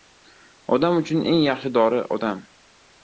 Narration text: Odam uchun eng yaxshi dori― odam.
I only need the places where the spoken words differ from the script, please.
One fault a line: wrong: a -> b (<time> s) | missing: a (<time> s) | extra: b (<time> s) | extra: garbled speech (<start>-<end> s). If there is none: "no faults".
no faults